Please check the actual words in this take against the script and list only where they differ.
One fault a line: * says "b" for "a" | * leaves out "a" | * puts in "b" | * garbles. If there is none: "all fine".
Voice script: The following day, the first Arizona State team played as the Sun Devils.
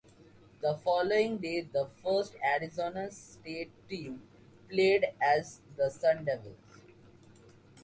all fine